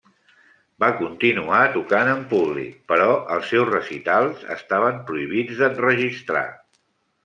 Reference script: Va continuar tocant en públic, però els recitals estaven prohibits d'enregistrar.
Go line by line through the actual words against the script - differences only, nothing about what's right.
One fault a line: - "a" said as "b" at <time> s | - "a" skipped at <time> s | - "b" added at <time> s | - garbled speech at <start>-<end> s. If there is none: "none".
- "seus" added at 3.6 s